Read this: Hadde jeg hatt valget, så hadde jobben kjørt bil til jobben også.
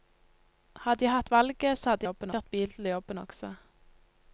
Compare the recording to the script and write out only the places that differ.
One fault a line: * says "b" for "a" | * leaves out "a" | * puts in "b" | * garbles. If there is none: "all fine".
all fine